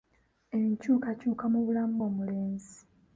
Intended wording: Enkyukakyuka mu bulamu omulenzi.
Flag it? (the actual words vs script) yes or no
no